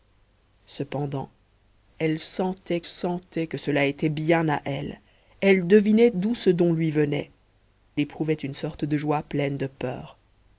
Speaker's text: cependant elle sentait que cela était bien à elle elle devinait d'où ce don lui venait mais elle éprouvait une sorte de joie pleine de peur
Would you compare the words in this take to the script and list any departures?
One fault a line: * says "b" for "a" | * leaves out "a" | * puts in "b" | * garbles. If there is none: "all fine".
* puts in "sentait"
* leaves out "mais elle"